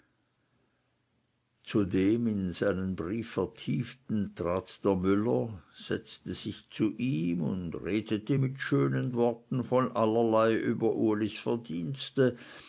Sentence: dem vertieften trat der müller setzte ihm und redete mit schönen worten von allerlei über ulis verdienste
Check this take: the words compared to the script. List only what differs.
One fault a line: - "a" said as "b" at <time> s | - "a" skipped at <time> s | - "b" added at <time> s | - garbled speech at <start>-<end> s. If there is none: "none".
- "in seinen brief" added at 2.2 s
- "sich zu" added at 6.3 s